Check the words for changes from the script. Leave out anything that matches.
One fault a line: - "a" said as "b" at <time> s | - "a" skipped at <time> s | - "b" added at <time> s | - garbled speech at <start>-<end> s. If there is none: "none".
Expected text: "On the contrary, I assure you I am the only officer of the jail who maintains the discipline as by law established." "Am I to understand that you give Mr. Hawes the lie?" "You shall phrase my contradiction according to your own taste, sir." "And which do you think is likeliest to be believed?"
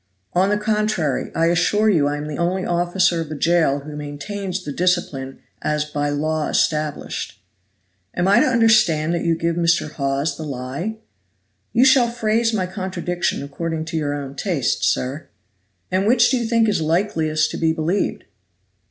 none